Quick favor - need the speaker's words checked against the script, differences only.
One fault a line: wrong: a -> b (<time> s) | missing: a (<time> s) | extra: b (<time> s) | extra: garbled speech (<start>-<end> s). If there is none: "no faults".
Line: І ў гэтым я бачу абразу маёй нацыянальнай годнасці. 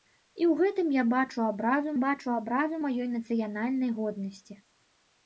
extra: бачу абразу (2.0 s)